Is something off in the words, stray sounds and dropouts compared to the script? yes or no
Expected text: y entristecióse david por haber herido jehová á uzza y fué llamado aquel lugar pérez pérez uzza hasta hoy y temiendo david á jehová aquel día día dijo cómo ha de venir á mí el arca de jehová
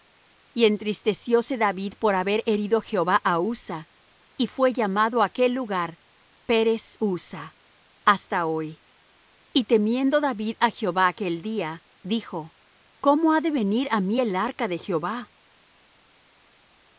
yes